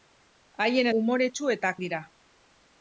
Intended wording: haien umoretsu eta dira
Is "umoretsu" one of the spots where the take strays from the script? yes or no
no